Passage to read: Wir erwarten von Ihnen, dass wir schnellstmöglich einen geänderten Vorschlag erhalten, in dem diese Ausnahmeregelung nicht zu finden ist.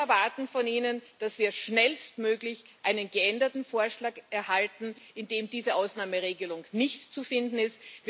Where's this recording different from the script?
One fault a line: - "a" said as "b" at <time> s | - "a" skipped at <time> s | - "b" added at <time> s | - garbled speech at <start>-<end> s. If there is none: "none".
none